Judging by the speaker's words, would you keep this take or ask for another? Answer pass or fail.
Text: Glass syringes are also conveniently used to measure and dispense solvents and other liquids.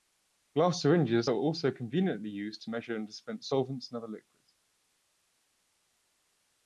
pass